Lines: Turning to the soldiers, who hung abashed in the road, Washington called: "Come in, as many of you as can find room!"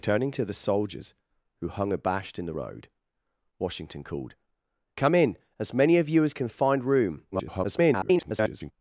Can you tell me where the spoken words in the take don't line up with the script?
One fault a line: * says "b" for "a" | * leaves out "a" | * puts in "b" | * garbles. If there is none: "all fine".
* garbles